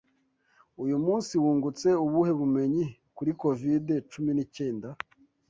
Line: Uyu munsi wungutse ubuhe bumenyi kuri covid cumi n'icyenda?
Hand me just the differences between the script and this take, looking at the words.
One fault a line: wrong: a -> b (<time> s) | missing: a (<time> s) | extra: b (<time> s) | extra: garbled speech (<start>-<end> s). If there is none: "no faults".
no faults